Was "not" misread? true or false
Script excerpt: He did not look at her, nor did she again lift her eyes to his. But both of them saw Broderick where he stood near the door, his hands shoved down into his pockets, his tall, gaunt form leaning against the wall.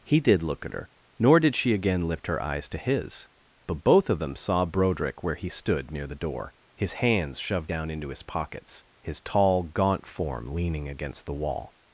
true